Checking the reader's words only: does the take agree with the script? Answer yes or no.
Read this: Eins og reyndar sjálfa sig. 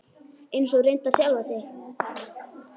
yes